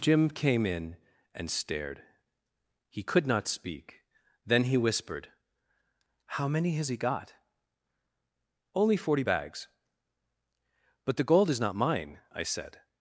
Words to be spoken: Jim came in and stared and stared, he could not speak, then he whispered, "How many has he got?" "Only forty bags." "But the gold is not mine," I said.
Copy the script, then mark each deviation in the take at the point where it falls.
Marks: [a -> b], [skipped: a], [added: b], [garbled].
Jim came in and stared [skipped: and stared,] he could not speak, then he whispered, "How many has he got?" "Only forty bags." "But the gold is not mine," I said.